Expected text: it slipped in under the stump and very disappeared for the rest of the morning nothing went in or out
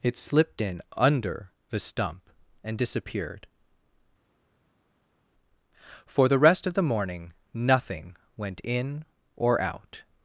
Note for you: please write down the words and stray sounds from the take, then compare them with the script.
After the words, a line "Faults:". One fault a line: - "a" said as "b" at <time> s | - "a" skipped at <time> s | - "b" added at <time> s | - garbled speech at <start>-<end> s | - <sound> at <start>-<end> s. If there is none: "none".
it slipped in under the stump and disappeared for the rest of the morning nothing went in or out
Faults:
- "very" skipped at 2.8 s